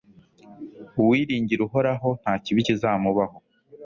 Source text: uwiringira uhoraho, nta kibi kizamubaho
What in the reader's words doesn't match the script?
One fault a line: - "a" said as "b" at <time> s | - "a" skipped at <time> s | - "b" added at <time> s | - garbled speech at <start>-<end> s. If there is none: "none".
none